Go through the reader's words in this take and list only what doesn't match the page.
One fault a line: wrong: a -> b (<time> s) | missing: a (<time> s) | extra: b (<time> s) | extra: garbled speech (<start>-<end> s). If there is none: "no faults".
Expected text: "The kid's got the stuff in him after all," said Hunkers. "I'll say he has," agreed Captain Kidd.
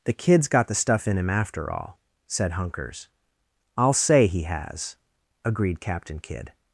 no faults